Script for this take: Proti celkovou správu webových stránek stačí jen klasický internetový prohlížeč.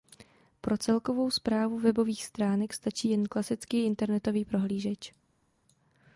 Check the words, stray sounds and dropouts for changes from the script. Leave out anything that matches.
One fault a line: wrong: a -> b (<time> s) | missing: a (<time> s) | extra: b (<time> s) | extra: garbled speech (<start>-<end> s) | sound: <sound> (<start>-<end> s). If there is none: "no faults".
wrong: Proti -> Pro (0.6 s)